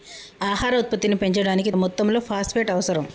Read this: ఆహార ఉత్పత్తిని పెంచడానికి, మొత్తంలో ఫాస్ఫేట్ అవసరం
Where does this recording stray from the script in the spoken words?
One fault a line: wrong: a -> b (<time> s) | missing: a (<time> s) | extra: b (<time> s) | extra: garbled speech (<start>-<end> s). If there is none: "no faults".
no faults